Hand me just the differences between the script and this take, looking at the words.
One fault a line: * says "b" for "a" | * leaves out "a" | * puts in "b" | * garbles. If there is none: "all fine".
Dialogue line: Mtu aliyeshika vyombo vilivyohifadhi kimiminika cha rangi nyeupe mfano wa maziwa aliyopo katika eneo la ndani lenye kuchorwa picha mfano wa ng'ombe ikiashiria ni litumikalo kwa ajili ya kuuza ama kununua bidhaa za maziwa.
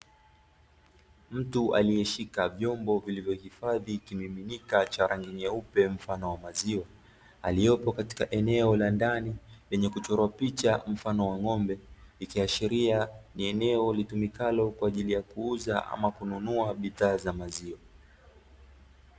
* puts in "eneo"